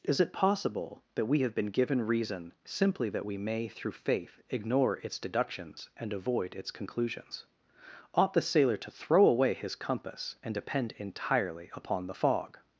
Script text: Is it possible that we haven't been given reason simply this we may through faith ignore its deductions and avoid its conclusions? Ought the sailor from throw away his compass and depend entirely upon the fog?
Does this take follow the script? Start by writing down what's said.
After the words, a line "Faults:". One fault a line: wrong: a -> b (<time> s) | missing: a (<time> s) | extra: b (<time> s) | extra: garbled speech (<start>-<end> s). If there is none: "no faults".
Is it possible that we have been given reason simply that we may through faith ignore its deductions and avoid its conclusions? Ought the sailor to throw away his compass and depend entirely upon the fog?
Faults:
wrong: haven't -> have (1.4 s)
wrong: this -> that (3.1 s)
wrong: from -> to (8.8 s)